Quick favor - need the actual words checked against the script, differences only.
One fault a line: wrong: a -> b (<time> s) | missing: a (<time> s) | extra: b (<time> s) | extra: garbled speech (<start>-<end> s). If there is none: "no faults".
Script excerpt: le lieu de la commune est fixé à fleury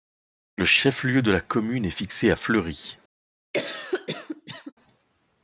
extra: chef (0.7 s)